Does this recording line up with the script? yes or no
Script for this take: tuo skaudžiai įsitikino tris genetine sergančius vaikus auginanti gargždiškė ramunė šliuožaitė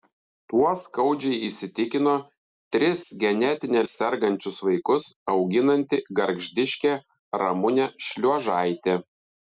yes